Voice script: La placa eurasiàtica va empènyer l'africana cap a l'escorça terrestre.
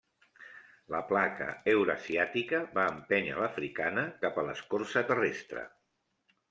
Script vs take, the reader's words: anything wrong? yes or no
no